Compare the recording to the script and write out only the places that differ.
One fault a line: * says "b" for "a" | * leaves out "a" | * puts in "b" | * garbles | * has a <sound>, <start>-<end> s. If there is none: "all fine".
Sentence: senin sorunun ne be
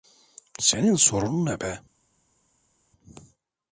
all fine